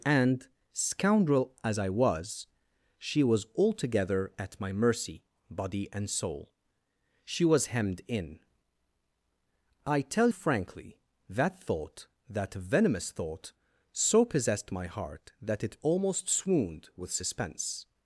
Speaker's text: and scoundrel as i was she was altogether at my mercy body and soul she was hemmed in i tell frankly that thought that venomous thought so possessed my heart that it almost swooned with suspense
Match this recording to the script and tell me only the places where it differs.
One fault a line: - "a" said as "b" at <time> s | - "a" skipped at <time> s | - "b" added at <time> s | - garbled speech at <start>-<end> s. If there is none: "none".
none